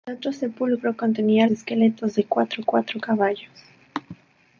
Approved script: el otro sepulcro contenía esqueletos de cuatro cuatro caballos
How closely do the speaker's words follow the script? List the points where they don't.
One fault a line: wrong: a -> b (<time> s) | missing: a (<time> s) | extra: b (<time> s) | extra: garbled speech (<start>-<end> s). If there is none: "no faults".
no faults